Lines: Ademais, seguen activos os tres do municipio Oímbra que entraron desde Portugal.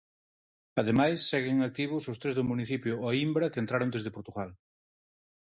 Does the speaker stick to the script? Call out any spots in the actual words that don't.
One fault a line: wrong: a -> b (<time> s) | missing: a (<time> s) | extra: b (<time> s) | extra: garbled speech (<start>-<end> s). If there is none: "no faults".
no faults